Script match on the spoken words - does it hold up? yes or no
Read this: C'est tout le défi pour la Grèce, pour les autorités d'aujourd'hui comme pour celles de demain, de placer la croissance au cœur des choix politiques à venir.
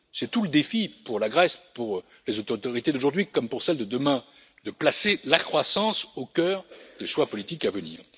yes